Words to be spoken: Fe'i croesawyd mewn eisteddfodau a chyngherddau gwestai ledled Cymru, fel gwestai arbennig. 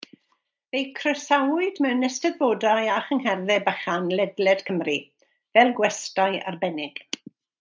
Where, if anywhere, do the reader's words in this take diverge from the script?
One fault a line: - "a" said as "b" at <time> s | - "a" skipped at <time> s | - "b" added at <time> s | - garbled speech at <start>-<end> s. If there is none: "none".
- "gwestai" said as "bychan" at 3.7 s